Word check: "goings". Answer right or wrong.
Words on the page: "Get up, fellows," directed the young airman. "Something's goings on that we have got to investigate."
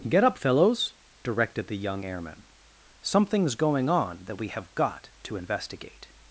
wrong